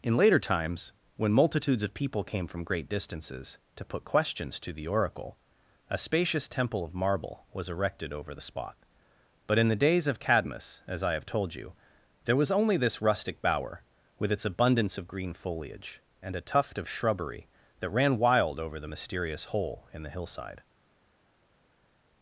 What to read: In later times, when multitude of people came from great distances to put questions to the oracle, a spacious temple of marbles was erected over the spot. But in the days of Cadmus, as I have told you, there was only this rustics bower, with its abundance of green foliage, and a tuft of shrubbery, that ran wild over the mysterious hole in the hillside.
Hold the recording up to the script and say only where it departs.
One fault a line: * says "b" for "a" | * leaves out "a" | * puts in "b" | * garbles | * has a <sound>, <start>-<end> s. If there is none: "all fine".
* says "multitudes" for "multitude"
* says "marble" for "marbles"
* says "rustic" for "rustics"